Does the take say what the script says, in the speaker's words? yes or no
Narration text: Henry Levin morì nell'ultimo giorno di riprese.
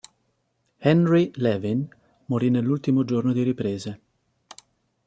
yes